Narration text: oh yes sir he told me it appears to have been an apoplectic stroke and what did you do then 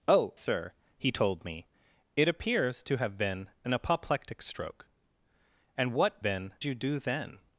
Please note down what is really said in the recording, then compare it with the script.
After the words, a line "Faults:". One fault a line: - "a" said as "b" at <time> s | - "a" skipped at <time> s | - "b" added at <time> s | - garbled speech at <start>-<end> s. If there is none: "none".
oh sir he told me it appears to have been an apoplectic stroke and what been you do then
Faults:
- "yes" skipped at 0.3 s
- "did" said as "been" at 6.2 s